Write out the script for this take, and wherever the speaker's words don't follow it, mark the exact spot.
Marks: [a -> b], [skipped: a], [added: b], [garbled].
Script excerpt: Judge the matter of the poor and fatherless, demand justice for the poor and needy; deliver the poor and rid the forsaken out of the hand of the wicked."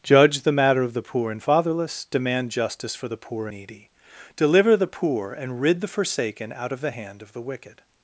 Judge the matter of the poor and fatherless, demand justice for the poor [skipped: and] needy; deliver the poor and rid the forsaken out of the hand of the wicked."